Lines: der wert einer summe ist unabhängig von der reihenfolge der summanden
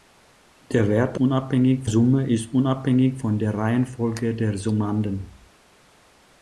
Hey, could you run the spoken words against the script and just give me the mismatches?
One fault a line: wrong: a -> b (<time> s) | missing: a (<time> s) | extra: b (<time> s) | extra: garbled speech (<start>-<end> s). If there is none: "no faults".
wrong: einer -> unabhängig (1.2 s)